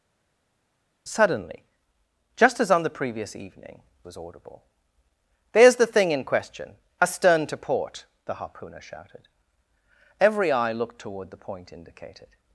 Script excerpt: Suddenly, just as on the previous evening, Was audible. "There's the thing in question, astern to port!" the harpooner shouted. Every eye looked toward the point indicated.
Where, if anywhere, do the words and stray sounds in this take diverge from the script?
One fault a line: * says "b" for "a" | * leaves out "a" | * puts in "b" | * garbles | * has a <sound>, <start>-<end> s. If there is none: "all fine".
all fine